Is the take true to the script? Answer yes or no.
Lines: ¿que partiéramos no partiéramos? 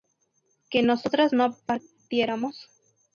no